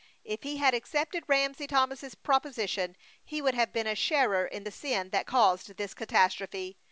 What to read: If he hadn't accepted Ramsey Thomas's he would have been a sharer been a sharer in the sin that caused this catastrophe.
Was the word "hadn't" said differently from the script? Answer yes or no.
yes